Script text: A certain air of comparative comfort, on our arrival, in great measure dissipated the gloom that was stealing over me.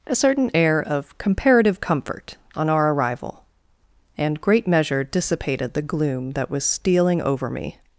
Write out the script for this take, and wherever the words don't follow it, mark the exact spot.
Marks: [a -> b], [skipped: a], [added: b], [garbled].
A certain air of comparative comfort, on our arrival, [in -> and] great measure dissipated the gloom that was stealing over me.